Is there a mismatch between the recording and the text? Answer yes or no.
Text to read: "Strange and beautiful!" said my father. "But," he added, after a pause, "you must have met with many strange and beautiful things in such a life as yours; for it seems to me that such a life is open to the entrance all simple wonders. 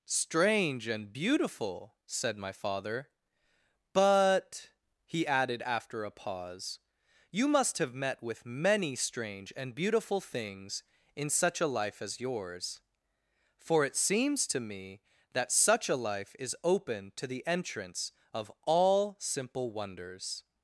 yes